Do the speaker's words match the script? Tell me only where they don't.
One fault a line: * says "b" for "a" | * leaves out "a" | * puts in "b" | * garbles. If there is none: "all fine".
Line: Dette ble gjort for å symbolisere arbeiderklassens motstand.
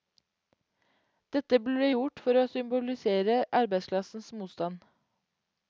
all fine